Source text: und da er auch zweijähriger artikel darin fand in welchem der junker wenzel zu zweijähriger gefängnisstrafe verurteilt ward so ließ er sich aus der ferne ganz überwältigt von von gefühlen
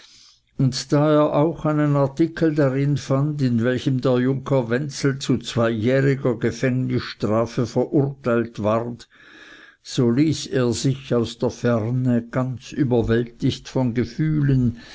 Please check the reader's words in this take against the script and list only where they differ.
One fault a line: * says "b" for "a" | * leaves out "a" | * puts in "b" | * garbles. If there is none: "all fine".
* says "einen" for "zweijähriger"
* leaves out "von"